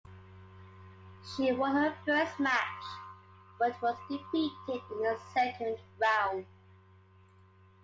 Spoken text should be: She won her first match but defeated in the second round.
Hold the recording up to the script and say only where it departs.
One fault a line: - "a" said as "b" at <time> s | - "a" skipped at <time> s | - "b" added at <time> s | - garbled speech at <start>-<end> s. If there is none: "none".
- "was" added at 3.8 s